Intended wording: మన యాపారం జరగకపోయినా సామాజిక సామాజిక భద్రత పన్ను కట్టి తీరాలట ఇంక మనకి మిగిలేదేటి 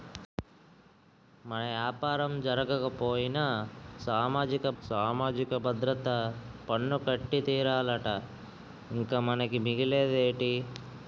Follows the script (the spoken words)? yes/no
yes